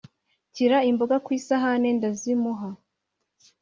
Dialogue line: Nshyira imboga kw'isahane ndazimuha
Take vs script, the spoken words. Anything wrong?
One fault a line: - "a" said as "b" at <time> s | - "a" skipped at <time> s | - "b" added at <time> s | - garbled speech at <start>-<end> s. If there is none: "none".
none